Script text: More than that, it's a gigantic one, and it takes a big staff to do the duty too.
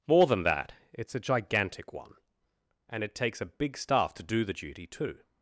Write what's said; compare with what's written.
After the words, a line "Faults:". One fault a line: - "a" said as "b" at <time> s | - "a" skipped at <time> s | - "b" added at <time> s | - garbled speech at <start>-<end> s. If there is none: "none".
More than that, it's a gigantic one, and it takes a big staff to do the duty too.
Faults:
none